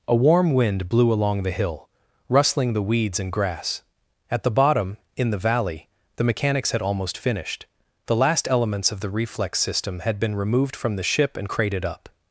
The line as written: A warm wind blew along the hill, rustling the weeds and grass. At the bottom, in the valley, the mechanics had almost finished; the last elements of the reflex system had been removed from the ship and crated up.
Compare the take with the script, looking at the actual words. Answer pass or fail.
pass